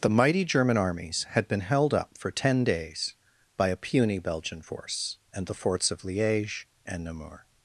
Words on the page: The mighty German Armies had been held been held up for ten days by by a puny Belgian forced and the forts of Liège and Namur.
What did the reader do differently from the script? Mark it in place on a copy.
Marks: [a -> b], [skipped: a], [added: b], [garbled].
The mighty German Armies had been held [skipped: been held] up for ten days by [skipped: by] a puny Belgian [forced -> force] and the forts of Liège and Namur.